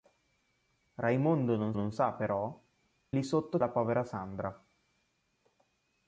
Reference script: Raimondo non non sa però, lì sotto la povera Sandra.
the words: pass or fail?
pass